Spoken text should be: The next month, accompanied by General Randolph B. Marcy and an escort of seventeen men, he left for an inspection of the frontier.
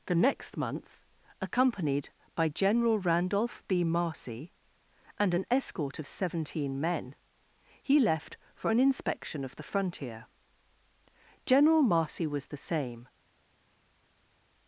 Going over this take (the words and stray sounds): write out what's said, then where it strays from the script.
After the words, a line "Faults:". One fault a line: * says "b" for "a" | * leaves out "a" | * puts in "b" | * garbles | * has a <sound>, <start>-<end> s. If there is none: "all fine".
The next month, accompanied by General Randolph B. Marcy and an escort of seventeen men, he left for an inspection of the frontier. General Marcy was the same
Faults:
* puts in "General Marcy was the same"